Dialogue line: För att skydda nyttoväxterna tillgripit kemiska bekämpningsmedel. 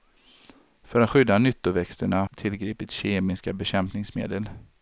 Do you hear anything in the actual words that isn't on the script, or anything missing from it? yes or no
no